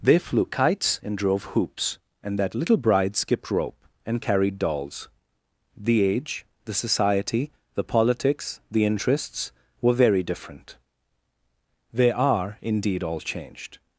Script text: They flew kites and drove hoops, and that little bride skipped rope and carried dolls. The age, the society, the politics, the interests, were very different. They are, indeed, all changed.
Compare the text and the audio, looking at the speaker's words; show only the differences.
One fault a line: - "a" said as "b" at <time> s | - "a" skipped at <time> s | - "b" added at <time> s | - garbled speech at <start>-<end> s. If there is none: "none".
none